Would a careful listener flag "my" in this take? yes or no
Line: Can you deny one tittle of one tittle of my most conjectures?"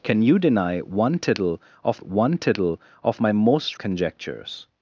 no